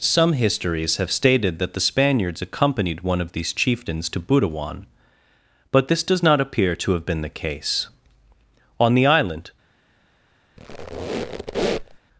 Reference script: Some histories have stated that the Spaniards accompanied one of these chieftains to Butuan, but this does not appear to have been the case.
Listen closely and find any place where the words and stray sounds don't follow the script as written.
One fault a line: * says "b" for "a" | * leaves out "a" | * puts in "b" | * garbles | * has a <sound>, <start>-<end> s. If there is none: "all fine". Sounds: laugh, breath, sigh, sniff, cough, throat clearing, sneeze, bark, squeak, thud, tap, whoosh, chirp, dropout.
* puts in "On the island"
* has a squeak, 10.6-12.0 s